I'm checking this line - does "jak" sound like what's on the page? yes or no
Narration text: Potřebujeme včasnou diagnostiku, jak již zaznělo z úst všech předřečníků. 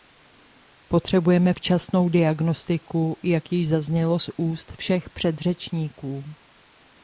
yes